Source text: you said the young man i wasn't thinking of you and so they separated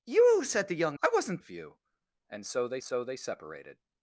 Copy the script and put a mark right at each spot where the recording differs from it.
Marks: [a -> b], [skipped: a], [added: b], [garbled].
you said the young [skipped: man] i wasn't [skipped: thinking] of you and so they [added: so they] separated